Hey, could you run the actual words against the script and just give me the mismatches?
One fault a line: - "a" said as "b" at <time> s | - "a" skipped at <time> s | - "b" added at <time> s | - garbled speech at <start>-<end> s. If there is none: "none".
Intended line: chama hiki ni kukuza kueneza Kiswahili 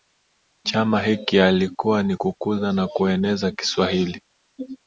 - "yalikuwa" added at 1.4 s
- "na" added at 2.7 s